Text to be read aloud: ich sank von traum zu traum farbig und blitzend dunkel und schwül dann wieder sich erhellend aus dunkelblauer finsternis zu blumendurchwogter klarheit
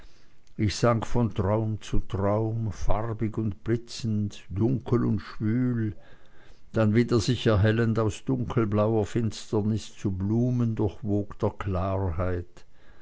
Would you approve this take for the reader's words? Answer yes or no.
yes